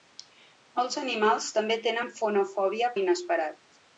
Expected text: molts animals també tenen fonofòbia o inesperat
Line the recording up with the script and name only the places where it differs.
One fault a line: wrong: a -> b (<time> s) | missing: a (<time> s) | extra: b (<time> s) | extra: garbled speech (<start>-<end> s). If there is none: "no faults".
no faults